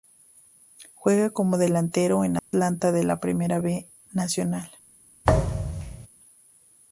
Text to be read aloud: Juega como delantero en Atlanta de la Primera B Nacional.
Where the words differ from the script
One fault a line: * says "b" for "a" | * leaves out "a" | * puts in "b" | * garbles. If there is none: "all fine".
all fine